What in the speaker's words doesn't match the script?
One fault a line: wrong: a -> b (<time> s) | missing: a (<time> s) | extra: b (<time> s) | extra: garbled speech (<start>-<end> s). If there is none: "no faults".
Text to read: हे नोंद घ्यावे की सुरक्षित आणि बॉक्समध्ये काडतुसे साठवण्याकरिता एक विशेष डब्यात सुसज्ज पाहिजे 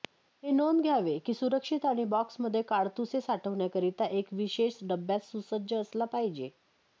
extra: असला (5.7 s)